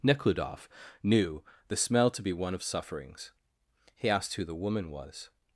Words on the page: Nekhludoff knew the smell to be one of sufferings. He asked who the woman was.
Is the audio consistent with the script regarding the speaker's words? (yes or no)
yes